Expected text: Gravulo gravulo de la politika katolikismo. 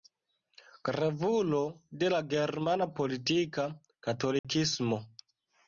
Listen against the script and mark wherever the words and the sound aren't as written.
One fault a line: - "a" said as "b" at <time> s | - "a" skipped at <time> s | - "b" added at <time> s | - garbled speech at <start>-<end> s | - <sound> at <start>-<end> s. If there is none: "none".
- "gravulo" skipped at 1.6 s
- "germana" added at 2.3 s
- dropout at 4.4-4.4 s